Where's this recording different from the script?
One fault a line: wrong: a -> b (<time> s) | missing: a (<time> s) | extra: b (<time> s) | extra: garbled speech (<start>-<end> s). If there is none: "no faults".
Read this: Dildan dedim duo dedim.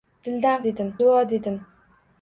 no faults